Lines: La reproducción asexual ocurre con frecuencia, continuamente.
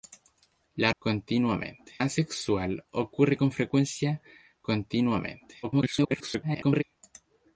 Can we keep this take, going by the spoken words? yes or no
no